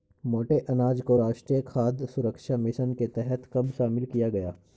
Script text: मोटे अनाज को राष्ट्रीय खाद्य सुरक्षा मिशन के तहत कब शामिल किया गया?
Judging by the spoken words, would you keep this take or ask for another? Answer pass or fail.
pass